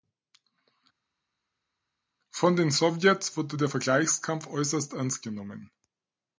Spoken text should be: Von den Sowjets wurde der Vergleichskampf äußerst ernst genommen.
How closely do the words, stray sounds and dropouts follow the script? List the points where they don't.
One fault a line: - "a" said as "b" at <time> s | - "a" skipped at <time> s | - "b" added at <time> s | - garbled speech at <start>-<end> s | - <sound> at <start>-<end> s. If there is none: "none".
none